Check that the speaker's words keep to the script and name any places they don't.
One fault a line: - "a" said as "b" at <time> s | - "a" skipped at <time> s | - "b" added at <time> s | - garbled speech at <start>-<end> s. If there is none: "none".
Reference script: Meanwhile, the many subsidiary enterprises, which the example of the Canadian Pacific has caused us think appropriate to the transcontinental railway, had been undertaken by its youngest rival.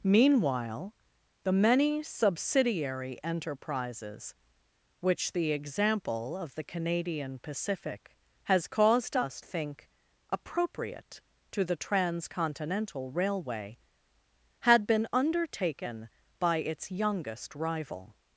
none